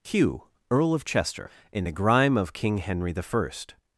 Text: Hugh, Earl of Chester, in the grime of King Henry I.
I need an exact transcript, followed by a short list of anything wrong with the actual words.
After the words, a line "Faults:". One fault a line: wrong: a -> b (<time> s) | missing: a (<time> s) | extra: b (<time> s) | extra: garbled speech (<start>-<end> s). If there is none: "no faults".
Hugh, Earl of Chester, in the grime of King Henry I.
Faults:
no faults